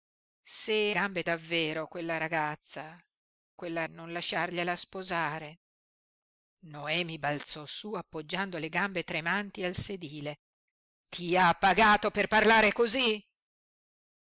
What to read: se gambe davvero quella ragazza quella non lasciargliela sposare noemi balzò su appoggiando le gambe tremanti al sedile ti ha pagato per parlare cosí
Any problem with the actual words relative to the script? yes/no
no